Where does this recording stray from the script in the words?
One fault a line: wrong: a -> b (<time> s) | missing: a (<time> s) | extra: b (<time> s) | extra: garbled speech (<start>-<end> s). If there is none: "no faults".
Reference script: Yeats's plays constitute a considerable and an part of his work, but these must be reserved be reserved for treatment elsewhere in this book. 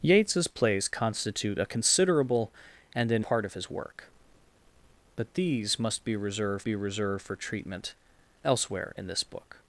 no faults